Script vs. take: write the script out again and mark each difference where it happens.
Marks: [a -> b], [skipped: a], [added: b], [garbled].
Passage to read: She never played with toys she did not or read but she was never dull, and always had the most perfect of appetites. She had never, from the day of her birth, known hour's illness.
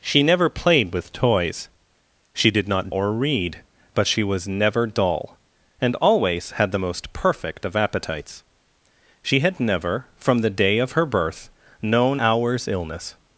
She never played with toys she did not or read but she was never dull, and always had the most perfect of appetites. She had never, from the day of her birth, known hour's illness.